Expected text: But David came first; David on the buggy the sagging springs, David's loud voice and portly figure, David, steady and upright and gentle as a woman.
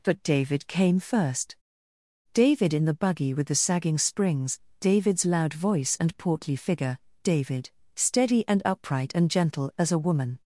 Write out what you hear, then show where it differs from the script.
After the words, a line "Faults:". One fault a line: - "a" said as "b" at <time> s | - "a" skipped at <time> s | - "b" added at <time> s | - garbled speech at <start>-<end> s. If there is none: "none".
But David came first; David in the buggy with the sagging springs, David's loud voice and portly figure, David, steady and upright and gentle as a woman.
Faults:
- "on" said as "in" at 2.7 s
- "with" added at 3.4 s